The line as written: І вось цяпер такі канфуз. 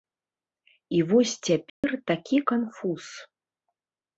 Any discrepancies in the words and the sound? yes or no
yes